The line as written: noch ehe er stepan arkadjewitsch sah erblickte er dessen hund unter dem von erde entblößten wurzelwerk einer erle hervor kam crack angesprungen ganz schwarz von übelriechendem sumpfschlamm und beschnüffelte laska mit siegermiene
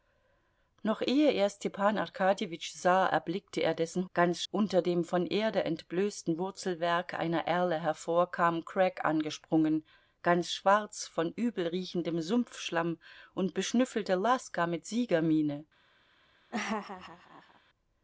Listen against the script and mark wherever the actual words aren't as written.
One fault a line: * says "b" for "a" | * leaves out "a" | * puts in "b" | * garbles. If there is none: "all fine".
* says "ganz" for "hund"